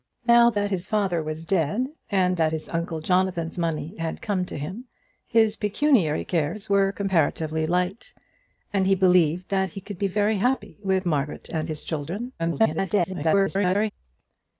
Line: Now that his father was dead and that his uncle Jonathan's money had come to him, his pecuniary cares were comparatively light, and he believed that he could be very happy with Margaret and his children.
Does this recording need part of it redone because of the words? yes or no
yes